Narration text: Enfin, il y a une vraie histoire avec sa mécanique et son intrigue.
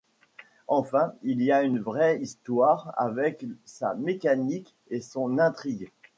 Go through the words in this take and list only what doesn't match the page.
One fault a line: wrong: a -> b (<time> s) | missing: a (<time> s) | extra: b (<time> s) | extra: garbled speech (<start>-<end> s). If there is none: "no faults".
no faults